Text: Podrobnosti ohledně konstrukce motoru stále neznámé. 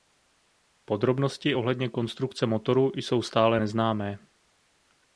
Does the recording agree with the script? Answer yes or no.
no